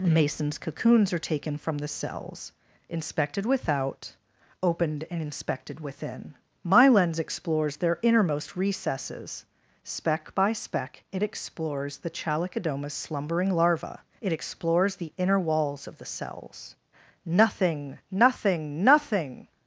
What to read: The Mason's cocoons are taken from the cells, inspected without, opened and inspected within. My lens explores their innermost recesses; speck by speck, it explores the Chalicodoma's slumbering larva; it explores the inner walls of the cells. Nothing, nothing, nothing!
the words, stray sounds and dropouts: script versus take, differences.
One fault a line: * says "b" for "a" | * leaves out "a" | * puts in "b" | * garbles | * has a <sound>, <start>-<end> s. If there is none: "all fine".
* leaves out "The"